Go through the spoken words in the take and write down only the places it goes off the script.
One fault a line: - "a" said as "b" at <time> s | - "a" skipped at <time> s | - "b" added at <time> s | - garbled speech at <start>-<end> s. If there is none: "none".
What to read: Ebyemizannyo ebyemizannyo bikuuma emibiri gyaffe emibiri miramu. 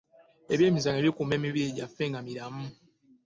- "ebyemizannyo" skipped at 1.0 s
- "emibiri" said as "nga" at 2.1 s